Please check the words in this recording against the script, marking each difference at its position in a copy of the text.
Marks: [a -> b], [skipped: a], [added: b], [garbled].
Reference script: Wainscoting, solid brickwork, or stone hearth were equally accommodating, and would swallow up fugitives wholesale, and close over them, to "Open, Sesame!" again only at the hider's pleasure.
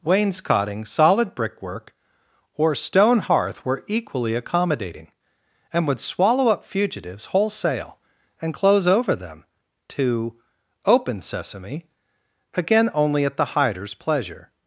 Wainscoting, solid brickwork, or stone hearth were equally accommodating, and would swallow up fugitives wholesale, and close over them, to "Open, Sesame!" again only at the hider's pleasure.